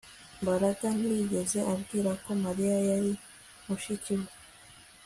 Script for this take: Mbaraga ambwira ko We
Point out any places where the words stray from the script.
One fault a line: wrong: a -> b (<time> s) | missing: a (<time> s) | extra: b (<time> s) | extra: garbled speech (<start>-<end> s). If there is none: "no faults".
extra: ntiyigeze (1.0 s)
extra: Mariya yari mushiki (2.4 s)